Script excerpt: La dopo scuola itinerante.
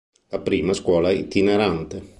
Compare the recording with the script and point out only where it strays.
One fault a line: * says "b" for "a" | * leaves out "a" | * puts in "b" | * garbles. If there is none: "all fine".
* says "prima" for "dopo"